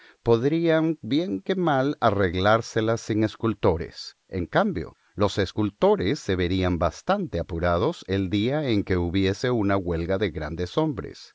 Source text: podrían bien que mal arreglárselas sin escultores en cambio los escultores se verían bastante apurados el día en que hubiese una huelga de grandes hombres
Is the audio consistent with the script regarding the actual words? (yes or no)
yes